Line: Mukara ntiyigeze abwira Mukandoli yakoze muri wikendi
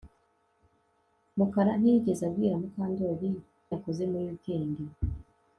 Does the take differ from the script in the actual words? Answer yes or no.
no